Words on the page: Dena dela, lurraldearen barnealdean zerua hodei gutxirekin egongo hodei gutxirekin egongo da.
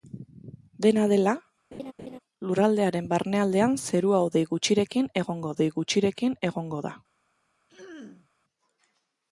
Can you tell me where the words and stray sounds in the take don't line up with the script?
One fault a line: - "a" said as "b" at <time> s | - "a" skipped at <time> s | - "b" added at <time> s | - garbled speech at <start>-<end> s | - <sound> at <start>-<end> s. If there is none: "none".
- laugh at 1.7-2.2 s
- throat clearing at 7.7-8.3 s